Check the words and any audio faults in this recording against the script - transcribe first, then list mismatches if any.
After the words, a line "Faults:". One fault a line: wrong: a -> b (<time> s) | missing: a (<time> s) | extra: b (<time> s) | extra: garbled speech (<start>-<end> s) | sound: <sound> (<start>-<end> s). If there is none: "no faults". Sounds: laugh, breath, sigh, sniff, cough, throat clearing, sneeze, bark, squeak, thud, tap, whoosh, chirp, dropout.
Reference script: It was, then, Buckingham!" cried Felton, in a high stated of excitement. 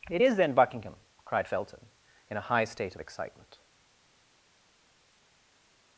It is, then, Buckingham!" cried Felton, in a high state of excitement.
Faults:
wrong: was -> is (0.2 s)
wrong: stated -> state (2.7 s)